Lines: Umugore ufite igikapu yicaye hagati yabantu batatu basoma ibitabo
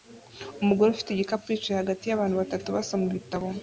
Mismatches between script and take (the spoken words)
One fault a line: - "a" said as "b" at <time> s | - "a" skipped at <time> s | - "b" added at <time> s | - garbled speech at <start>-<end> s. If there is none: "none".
none